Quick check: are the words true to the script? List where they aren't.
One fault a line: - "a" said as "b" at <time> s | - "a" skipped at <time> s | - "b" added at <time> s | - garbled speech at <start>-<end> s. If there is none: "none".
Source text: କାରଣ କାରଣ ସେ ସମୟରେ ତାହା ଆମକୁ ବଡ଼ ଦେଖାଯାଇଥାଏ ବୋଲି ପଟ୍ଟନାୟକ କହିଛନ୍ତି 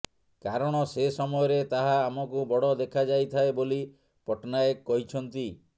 - "କାରଣ" skipped at 0.8 s